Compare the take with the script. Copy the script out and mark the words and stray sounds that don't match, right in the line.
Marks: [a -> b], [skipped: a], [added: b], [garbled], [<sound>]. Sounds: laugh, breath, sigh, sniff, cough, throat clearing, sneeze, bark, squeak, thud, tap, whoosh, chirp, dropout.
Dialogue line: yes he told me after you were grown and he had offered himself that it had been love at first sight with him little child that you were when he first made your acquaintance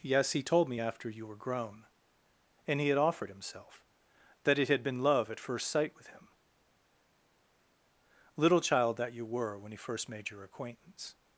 yes he told me after you were grown and he had offered himself that it had been love at first sight with him little child that you were when he first made your acquaintance